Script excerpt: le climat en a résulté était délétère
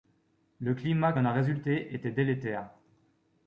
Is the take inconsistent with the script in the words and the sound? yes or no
no